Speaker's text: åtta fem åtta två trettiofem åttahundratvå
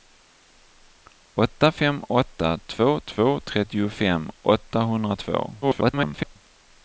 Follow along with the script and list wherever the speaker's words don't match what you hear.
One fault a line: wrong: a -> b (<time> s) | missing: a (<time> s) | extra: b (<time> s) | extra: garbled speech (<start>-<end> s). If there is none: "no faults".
extra: två (3.0 s)
extra: garbled speech (5.6-6.4 s)